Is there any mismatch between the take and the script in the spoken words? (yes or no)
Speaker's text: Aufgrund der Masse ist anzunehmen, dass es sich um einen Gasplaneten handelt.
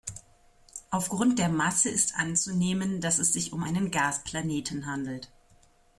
no